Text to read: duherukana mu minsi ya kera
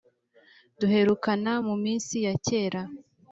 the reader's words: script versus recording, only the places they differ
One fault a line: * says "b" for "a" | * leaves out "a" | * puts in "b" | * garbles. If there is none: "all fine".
all fine